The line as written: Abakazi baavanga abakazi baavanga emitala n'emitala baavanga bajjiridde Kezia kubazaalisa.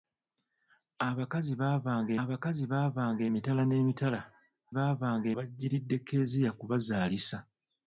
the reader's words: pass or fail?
pass